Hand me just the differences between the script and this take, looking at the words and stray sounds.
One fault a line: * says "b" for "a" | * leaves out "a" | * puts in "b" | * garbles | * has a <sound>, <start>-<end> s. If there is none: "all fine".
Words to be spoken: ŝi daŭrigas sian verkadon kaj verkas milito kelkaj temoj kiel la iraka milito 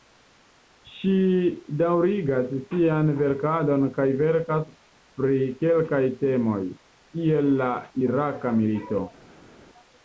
* says "pri" for "milito"